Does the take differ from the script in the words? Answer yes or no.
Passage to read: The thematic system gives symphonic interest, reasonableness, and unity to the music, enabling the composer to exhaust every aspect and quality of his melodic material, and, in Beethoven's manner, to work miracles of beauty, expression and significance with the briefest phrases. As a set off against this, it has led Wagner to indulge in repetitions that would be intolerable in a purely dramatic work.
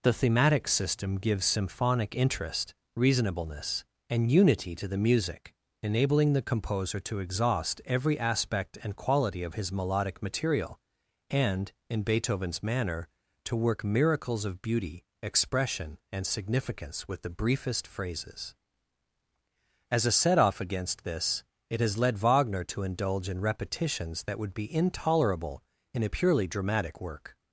no